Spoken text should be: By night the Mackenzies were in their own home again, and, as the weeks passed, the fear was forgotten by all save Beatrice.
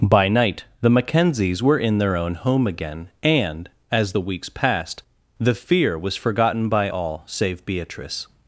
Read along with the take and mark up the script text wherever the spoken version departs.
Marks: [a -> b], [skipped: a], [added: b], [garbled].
By night the Mackenzies were in their own home again, and, as the weeks passed, the fear was forgotten by all save Beatrice.